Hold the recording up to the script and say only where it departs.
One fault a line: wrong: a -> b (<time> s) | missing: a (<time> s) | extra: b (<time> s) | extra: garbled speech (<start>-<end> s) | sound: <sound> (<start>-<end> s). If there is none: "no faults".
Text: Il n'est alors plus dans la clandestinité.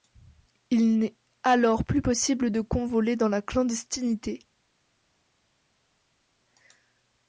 extra: possible de convoler (2.0 s)